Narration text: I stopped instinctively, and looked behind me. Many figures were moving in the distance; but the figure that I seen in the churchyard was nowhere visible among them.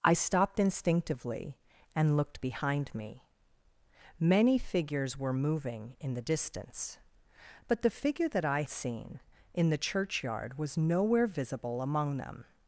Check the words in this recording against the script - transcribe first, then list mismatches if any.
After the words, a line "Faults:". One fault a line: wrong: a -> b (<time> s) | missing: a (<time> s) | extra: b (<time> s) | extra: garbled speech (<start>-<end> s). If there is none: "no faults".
I stopped instinctively, and looked behind me. Many figures were moving in the distance; but the figure that I seen in the churchyard was nowhere visible among them.
Faults:
no faults